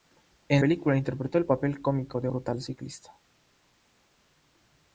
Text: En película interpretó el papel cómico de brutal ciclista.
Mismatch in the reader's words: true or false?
false